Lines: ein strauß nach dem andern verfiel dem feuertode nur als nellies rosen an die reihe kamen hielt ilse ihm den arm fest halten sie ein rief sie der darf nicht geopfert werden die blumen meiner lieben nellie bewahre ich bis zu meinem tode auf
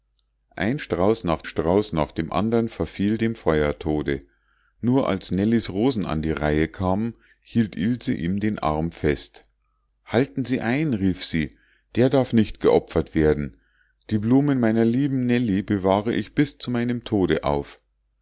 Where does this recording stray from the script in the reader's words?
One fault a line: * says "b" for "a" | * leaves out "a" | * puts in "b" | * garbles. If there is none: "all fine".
* puts in "strauß nach"